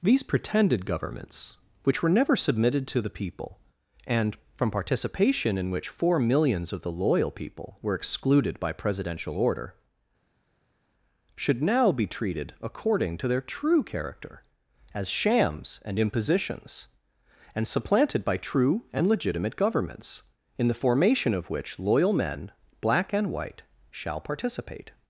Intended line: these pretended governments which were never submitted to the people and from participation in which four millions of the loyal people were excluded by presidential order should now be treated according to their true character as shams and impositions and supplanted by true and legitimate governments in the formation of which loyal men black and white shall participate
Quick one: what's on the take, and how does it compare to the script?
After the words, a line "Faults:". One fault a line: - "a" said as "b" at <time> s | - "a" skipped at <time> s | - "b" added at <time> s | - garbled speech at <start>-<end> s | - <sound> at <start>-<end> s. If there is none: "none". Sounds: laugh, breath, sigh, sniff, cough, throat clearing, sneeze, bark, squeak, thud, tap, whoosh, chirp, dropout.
these pretended governments which were never submitted to the people and from participation in which four millions of the loyal people were excluded by presidential order should now be treated according to their true character as shams and impositions and supplanted by true and legitimate governments in the formation of which loyal men black and white shall participate
Faults:
none